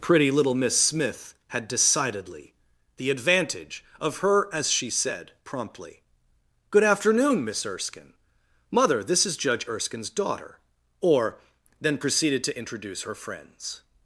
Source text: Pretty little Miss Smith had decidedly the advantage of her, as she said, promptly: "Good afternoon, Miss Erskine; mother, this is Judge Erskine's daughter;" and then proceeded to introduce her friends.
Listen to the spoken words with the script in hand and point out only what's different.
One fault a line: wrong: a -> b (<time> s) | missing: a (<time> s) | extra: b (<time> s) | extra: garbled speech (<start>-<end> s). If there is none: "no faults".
wrong: and -> or (11.0 s)